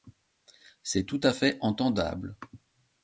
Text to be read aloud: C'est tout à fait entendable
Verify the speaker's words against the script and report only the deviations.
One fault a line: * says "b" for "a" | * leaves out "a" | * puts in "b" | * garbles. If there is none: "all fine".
all fine